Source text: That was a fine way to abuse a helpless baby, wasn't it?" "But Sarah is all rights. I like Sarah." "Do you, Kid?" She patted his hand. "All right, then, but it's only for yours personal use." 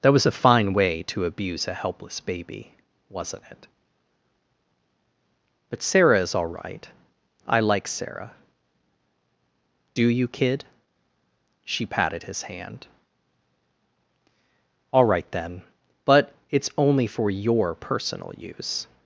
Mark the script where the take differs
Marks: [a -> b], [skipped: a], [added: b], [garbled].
That was a fine way to abuse a helpless baby, wasn't it?" "But Sarah is all [rights. -> right] I like Sarah." "Do you, Kid?" She patted his hand. "All right, then, but it's only for [yours -> your] personal use."